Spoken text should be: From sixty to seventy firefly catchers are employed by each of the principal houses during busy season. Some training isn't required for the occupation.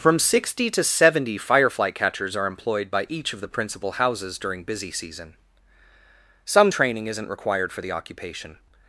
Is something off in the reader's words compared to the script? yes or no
no